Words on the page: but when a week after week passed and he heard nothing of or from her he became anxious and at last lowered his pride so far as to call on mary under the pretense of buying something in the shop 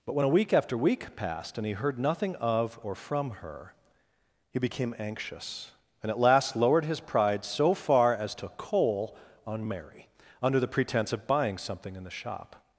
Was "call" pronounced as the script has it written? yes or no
no